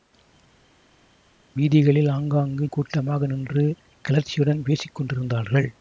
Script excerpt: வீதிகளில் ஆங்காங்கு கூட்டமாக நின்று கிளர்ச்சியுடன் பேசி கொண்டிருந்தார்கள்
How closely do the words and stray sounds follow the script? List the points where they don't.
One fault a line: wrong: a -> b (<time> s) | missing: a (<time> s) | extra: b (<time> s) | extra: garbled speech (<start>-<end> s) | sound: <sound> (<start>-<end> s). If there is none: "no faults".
no faults